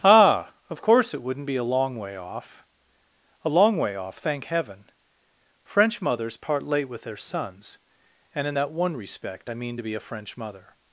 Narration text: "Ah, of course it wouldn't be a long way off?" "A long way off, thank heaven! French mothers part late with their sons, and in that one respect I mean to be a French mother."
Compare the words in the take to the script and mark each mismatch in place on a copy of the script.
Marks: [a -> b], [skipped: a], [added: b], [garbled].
"Ah, of course it wouldn't be a long way off?" "A long way off, thank heaven! French mothers part late with their sons, and in that one respect I mean to be a French mother."